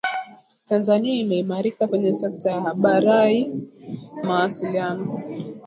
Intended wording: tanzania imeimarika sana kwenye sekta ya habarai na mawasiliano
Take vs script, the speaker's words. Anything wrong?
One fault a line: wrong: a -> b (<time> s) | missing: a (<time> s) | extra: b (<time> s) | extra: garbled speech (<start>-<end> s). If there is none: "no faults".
missing: sana (1.9 s)
missing: na (3.5 s)